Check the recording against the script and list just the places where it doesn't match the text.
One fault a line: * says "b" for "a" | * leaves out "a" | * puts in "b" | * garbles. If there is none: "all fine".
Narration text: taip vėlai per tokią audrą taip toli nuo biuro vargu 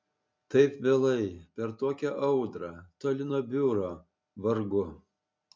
* leaves out "taip"